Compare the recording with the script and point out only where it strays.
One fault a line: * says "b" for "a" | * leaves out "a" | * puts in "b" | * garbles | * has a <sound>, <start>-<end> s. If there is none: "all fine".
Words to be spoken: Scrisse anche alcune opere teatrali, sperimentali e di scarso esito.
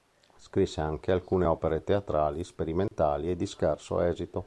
* has a dropout, 2.9-2.9 s